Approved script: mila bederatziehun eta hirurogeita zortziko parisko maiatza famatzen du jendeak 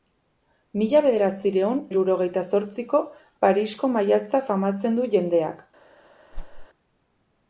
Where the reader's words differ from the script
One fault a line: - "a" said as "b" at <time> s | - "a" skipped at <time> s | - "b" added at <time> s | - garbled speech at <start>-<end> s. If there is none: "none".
- "eta" skipped at 1.8 s